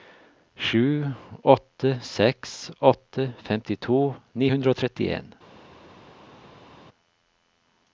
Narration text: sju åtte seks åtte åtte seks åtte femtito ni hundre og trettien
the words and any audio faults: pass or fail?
fail